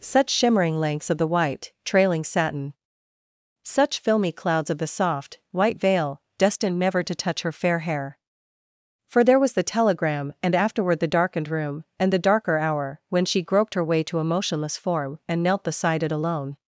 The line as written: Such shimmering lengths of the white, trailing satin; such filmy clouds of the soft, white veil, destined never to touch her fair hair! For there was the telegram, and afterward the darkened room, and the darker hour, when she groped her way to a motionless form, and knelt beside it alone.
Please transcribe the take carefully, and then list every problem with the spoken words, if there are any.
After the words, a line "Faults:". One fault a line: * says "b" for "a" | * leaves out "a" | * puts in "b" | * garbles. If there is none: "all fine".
Such shimmering lengths of the white, trailing satin; such filmy clouds of the soft, white veil, destined never to touch her fair hair! For there was the telegram, and afterward the darkened room, and the darker hour, when she groped her way to a motionless form, and knelt beside it alone.
Faults:
all fine